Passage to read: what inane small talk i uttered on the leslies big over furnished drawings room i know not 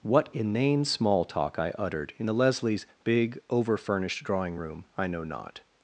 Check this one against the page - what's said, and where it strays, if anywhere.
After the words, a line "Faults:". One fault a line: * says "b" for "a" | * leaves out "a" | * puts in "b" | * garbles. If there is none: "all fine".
what inane small talk i uttered in the leslies big over furnished drawing room i know not
Faults:
* says "in" for "on"
* says "drawing" for "drawings"